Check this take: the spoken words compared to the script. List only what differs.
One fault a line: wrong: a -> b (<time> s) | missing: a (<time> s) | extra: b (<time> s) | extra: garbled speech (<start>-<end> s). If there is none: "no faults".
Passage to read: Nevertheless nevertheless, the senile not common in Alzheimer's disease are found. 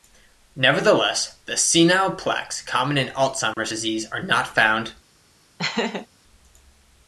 missing: nevertheless (1.4 s)
wrong: not -> plaques (2.1 s)
extra: not (4.2 s)